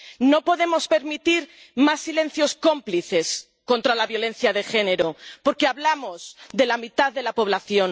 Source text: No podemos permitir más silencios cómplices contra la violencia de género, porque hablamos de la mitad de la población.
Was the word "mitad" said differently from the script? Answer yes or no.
no